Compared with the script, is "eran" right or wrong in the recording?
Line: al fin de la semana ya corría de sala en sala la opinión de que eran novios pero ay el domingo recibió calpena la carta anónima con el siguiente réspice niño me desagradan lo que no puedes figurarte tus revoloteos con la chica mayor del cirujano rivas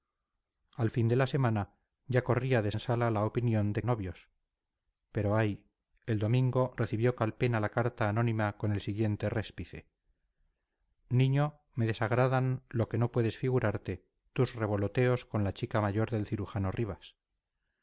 wrong